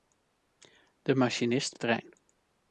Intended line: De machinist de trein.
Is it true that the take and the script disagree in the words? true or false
false